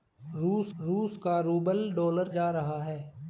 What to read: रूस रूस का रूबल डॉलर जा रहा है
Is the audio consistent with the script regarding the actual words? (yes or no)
yes